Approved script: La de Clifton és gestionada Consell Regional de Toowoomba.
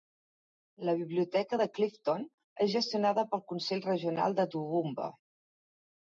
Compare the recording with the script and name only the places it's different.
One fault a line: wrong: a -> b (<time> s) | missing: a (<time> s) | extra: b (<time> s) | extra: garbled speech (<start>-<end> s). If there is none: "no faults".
extra: biblioteca (1.0 s)
extra: pel (3.3 s)